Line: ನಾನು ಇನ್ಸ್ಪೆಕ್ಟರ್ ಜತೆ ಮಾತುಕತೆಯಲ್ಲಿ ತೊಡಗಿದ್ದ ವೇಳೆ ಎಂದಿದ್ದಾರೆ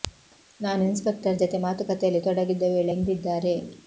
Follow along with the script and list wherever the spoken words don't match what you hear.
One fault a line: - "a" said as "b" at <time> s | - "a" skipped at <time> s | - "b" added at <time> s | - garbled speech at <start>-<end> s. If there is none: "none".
none